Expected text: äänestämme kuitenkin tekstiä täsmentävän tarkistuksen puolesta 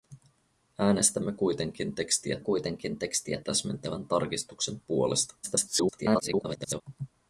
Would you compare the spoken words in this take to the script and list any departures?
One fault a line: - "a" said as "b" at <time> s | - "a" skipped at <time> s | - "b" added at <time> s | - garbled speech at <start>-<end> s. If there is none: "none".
- "kuitenkin tekstiä" added at 2.4 s
- garbled speech at 5.4-6.8 s